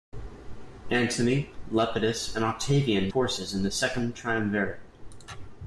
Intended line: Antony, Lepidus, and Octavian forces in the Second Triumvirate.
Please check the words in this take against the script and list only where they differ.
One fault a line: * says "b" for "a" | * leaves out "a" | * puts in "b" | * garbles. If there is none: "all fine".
all fine